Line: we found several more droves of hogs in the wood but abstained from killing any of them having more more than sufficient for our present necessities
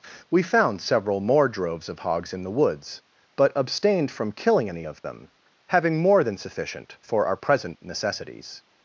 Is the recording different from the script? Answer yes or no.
yes